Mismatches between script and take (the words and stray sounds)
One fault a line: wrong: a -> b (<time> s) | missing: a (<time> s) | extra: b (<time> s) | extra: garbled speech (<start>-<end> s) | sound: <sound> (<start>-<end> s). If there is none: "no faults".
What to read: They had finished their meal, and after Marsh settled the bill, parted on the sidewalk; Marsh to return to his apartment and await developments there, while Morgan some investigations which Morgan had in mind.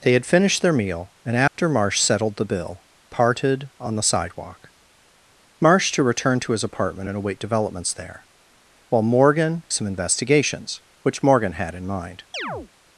sound: dropout (1.5-1.6 s)
sound: chirp (12.3-12.7 s)